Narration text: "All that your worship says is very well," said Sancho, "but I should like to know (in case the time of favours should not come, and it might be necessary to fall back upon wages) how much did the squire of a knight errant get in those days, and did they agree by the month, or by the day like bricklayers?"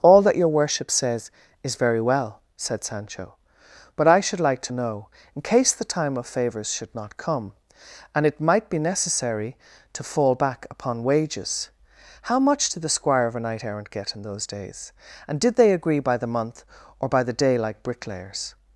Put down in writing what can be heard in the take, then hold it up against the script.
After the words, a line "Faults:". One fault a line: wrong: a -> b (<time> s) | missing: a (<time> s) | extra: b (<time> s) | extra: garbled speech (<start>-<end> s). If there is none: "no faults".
"All that your worship says is very well," said Sancho, "but I should like to know (in case the time of favours should not come, and it might be necessary to fall back upon wages) how much did the squire of a knight errant get in those days, and did they agree by the month, or by the day like bricklayers?"
Faults:
no faults